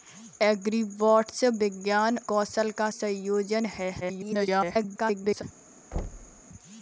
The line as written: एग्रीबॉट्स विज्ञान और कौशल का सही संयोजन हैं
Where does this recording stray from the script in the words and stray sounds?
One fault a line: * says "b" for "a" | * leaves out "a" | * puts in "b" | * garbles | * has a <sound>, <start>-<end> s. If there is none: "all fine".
* leaves out "और"
* leaves out "सही"
* garbles
* has a thud, 5.9-6.4 s